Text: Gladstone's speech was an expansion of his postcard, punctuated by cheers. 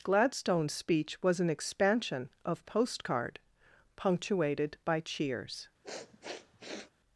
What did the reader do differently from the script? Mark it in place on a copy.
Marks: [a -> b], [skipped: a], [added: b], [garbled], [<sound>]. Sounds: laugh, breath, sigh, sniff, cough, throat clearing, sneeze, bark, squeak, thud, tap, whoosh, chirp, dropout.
Gladstone's speech was an expansion of [skipped: his] postcard, punctuated by cheers. [sniff]